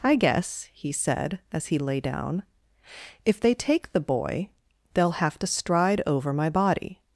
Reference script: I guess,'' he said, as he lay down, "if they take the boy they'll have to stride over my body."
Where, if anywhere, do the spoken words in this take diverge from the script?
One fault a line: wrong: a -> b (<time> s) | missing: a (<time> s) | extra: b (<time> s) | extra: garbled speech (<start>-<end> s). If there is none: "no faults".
no faults